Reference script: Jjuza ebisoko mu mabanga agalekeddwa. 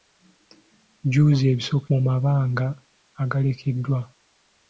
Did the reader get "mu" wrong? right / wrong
right